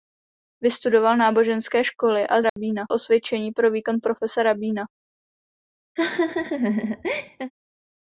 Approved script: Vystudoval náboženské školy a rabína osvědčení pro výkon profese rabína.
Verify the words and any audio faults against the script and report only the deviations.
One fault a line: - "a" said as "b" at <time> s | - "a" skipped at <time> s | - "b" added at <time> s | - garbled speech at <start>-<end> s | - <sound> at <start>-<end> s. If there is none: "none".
- dropout at 2.5-2.6 s
- laugh at 6.0-7.5 s